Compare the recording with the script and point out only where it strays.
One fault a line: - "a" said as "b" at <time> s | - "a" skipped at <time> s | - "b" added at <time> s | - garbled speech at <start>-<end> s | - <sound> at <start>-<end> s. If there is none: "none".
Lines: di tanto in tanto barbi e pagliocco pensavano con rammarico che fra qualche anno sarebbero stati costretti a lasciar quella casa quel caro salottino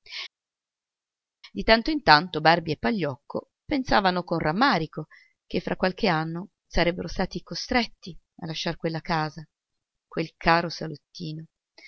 none